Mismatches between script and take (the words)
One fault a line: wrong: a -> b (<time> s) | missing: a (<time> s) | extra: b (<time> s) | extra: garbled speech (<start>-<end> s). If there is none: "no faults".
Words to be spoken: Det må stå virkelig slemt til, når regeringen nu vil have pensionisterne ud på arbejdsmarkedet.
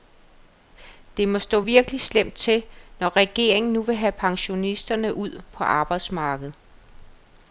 no faults